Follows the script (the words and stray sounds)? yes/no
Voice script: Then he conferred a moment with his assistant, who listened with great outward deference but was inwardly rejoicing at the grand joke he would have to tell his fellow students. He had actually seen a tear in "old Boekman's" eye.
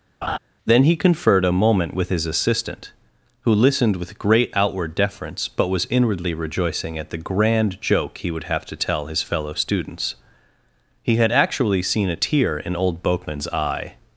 no